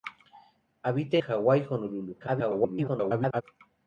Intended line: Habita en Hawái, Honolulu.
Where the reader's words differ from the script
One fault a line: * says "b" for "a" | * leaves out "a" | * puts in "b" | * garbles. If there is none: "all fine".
* leaves out "en"
* garbles